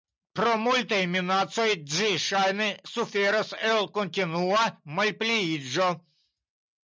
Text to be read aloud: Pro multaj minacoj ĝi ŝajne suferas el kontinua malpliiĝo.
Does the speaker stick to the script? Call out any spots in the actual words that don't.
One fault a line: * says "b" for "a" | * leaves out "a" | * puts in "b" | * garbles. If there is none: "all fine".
all fine